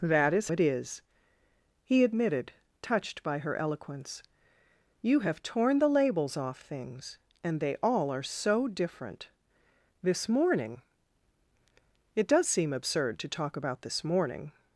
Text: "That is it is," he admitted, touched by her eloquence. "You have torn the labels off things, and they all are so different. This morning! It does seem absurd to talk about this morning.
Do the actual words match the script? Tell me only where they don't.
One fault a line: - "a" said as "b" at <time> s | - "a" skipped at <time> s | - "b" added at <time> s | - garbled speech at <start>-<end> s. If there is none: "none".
none